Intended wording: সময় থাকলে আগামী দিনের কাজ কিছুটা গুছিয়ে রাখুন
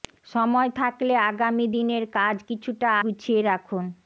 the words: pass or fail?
pass